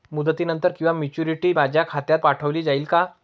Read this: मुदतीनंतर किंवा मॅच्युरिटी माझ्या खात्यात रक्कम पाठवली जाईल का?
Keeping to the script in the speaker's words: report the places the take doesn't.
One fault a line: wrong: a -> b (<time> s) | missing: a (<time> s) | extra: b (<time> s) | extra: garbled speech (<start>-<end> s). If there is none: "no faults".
missing: रक्कम (2.2 s)